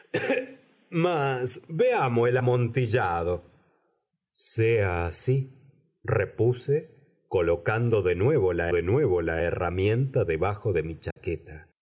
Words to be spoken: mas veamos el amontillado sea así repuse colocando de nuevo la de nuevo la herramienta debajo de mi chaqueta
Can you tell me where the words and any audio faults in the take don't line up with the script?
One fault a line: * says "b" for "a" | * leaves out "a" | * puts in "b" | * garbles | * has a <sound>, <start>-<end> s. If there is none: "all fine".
* has a dropout, 11.1-11.2 s